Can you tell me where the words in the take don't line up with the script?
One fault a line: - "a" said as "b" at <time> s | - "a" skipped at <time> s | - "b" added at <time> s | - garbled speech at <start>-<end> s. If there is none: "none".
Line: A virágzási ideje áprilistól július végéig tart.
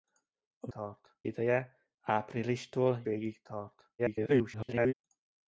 - "virágzási" said as "tart" at 0.7 s
- "július" skipped at 3.0 s
- garbled speech at 4.0-4.9 s